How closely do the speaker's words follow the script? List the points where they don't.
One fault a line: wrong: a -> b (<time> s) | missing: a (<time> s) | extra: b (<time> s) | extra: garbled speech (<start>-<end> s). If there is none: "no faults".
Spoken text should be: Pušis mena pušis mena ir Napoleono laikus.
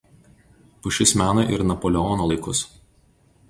missing: pušis mena (1.4 s)